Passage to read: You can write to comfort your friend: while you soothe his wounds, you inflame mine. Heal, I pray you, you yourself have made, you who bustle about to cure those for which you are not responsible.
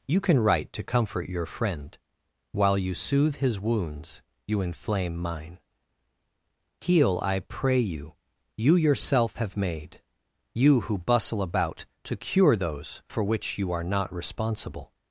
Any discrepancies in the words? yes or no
no